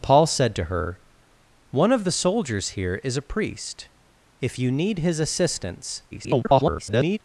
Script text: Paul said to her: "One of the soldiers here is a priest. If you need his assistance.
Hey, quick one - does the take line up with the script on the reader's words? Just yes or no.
no